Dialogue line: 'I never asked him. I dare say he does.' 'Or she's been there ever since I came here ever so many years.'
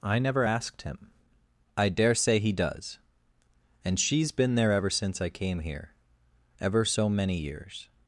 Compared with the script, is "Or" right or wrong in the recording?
wrong